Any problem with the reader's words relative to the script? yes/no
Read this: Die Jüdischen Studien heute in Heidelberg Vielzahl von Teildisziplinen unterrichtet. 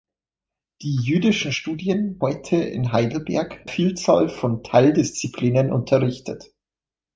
no